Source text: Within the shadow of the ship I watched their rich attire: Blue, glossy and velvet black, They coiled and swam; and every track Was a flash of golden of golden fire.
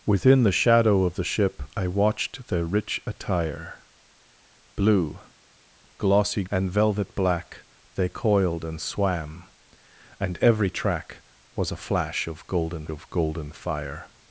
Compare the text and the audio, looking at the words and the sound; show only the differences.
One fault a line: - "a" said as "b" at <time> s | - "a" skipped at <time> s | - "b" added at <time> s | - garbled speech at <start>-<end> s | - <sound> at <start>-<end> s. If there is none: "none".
none